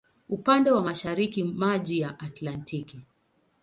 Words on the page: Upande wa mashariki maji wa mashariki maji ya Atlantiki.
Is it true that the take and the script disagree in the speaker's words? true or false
true